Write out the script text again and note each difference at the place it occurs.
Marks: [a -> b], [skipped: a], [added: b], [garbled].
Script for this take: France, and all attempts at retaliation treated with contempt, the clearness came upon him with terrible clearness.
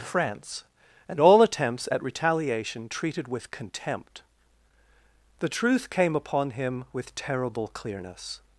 France, and all attempts at retaliation treated with contempt, the [clearness -> truth] came upon him with terrible clearness.